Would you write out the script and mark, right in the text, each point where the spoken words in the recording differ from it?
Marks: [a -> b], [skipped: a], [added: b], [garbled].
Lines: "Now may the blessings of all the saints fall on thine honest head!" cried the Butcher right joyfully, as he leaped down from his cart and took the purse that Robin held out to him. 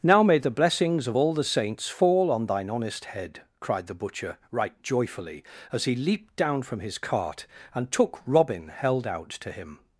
"Now may the blessings of all the saints fall on thine honest head!" cried the Butcher right joyfully, as he leaped down from his cart and took [skipped: the purse that] Robin held out to him.